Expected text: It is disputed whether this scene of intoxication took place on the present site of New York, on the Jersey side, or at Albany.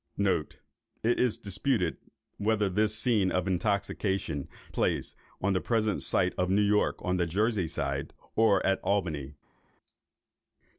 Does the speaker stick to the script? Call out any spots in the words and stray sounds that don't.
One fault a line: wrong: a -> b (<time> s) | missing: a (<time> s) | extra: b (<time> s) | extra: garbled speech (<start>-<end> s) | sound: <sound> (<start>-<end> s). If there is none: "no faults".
missing: took (4.5 s)